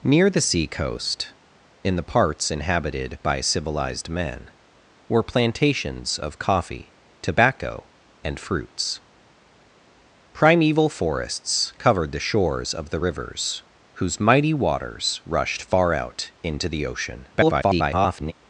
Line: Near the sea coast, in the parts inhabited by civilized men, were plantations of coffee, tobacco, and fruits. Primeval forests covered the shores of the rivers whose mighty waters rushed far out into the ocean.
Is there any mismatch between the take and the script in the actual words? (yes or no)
yes